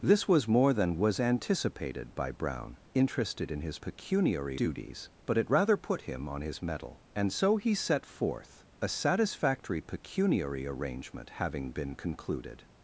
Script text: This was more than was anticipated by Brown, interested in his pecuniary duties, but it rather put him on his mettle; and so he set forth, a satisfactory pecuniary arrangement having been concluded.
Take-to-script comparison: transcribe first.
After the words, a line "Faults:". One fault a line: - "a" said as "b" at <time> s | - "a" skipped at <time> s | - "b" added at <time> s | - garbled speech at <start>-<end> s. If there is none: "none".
This was more than was anticipated by Brown, interested in his pecuniary duties, but it rather put him on his mettle; and so he set forth, a satisfactory pecuniary arrangement having been concluded.
Faults:
none